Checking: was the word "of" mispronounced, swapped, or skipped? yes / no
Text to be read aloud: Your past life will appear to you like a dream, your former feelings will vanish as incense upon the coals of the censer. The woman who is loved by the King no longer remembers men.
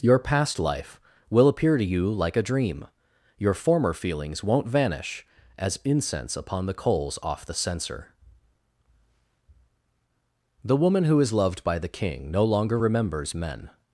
yes